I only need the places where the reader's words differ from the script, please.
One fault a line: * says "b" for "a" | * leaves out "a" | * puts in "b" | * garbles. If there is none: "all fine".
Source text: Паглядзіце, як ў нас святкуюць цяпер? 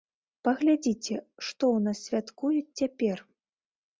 * says "што" for "як"